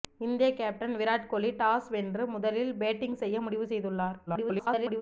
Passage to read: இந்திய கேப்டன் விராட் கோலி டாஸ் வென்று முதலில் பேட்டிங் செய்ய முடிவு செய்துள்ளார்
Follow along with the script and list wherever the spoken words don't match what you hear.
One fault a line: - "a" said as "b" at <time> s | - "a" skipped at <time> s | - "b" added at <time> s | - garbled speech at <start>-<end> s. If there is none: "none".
- garbled speech at 4.3-5.0 s